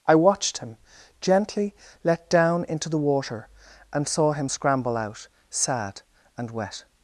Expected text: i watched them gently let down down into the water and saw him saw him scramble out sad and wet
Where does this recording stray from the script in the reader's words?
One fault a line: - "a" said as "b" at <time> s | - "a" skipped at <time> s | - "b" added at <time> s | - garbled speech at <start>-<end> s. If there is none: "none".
- "them" said as "him" at 0.6 s
- "down" skipped at 2.6 s
- "saw him" skipped at 4.5 s